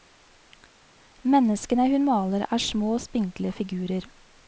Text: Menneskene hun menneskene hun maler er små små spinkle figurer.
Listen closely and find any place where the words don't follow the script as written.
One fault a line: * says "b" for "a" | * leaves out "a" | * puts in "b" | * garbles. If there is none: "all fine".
* leaves out "menneskene hun"
* leaves out "små"